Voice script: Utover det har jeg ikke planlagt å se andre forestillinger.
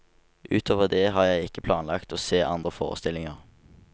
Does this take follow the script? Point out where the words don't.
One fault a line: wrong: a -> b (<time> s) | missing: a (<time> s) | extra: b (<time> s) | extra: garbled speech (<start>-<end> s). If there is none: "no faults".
no faults